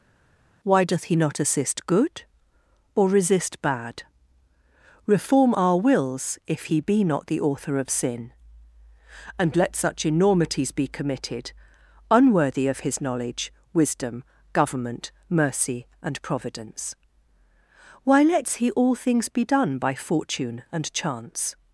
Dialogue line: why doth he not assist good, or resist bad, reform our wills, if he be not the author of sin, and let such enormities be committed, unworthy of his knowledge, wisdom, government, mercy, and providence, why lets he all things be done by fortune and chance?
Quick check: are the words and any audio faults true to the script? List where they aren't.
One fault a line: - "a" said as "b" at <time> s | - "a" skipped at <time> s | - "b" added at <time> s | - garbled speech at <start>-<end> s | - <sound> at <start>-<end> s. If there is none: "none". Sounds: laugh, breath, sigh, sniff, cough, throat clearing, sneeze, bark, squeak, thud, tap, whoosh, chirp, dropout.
none